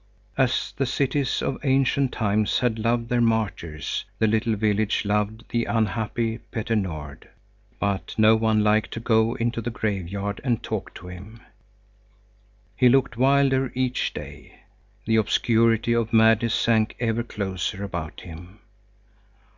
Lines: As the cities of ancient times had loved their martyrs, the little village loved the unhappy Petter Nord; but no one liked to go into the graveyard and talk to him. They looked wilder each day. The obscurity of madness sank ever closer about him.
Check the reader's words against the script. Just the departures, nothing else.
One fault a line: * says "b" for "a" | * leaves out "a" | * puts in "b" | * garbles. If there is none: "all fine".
* says "He" for "They"